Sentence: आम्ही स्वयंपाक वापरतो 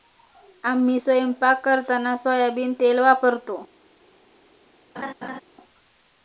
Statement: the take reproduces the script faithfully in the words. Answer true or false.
false